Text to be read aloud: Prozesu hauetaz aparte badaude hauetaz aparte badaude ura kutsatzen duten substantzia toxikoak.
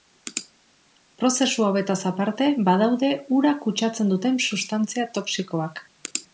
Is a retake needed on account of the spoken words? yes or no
yes